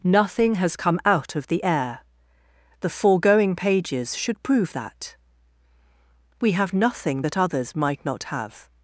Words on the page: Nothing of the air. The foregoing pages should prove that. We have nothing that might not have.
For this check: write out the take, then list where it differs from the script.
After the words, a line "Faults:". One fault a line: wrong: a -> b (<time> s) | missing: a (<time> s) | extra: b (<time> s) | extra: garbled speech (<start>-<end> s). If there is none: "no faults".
Nothing has come out of the air. The foregoing pages should prove that. We have nothing that others might not have.
Faults:
extra: has come out (0.6 s)
extra: others (7.4 s)